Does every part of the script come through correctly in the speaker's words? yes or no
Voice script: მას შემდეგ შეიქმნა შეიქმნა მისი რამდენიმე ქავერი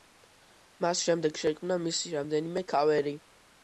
no